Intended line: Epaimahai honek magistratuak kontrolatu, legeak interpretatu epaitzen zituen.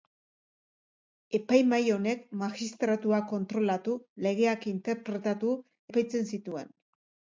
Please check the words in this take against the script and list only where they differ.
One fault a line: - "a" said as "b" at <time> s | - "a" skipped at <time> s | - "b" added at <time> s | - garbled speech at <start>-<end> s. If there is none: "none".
none